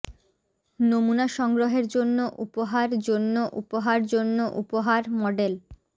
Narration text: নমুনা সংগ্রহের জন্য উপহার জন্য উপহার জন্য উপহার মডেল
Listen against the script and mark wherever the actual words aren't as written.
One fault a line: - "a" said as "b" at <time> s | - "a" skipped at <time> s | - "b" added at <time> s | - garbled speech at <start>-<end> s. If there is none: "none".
none